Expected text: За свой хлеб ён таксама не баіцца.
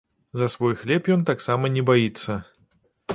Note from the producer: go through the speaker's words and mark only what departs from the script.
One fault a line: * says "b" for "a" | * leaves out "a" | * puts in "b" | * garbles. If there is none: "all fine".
all fine